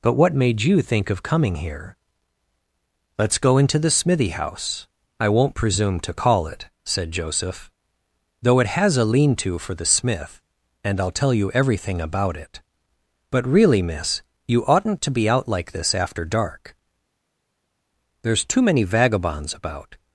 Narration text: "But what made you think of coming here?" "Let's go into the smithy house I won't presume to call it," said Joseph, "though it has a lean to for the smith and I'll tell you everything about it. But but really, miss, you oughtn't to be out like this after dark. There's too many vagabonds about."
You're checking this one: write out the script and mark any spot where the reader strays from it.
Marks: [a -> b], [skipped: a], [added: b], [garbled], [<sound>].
"But what made you think of coming here?" "Let's go into the smithy house I won't presume to call it," said Joseph, "though it has a lean to for the smith and I'll tell you everything about it. But [skipped: but] really, miss, you oughtn't to be out like this after dark. There's too many vagabonds about."